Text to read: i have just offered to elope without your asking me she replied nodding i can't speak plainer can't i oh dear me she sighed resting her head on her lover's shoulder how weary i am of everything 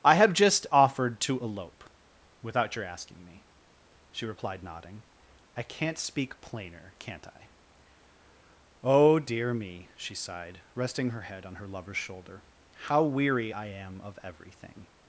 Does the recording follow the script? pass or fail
pass